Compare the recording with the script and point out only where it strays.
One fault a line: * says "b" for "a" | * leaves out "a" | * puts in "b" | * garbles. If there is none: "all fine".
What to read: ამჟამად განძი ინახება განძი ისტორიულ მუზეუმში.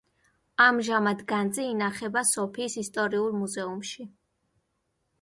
* says "სოფიის" for "განძი"